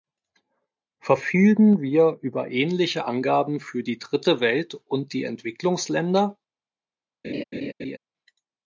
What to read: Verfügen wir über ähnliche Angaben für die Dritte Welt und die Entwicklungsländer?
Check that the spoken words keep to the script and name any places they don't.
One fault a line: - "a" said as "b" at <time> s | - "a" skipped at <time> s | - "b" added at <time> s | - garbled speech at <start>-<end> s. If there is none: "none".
none